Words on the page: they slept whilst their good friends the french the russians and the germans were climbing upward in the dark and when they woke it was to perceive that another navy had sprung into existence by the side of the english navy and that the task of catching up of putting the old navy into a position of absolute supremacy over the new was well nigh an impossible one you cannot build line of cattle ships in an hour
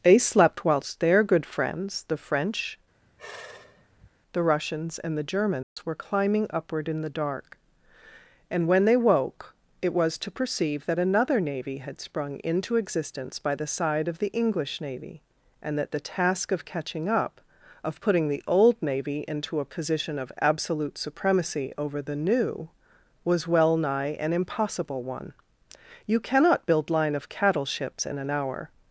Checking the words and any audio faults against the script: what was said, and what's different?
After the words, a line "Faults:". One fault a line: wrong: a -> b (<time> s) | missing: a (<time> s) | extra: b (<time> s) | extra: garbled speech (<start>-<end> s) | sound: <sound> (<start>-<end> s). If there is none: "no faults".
they slept whilst their good friends the french the russians and the germans were climbing upward in the dark and when they woke it was to perceive that another navy had sprung into existence by the side of the english navy and that the task of catching up of putting the old navy into a position of absolute supremacy over the new was well nigh an impossible one you cannot build line of cattle ships in an hour
Faults:
sound: sigh (3.0-4.1 s)
sound: dropout (5.6-5.8 s)